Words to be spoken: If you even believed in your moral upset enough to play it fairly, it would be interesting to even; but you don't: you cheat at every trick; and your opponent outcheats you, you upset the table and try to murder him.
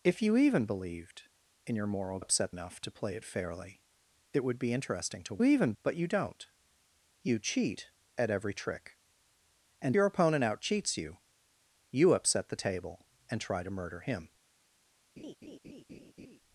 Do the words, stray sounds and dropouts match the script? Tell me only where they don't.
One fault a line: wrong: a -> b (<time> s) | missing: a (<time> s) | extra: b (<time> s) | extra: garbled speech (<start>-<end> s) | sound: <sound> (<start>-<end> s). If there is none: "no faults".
sound: laugh (15.2-16.4 s)